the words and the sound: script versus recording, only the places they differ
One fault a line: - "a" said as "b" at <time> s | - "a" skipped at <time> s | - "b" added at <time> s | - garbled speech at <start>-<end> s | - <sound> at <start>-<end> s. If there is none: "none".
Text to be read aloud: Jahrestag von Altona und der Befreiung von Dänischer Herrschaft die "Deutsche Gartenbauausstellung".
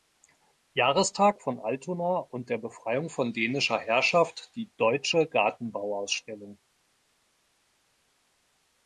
none